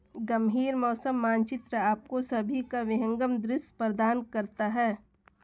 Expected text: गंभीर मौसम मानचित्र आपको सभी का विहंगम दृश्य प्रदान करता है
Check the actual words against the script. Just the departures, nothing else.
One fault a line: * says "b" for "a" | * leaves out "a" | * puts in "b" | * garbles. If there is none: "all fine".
all fine